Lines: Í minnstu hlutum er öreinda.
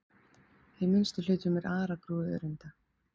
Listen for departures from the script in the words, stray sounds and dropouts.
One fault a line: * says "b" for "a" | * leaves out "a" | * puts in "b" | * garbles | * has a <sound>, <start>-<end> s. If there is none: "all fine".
* puts in "aragrúi"